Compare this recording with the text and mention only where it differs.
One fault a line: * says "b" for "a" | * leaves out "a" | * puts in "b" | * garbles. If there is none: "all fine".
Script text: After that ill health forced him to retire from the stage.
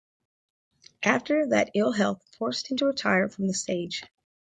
all fine